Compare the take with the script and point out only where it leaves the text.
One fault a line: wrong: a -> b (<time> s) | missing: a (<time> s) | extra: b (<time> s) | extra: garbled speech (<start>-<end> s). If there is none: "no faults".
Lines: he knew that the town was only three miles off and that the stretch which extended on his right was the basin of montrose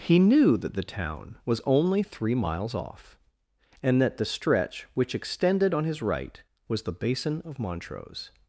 no faults